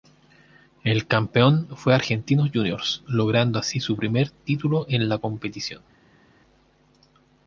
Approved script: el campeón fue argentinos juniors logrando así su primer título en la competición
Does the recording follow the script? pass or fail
pass